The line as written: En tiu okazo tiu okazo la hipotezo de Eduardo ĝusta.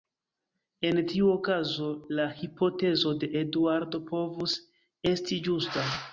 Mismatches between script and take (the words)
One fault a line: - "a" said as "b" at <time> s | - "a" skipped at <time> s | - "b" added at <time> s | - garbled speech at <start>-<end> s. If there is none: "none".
- "tiu okazo" skipped at 1.9 s
- "povus esti" added at 4.1 s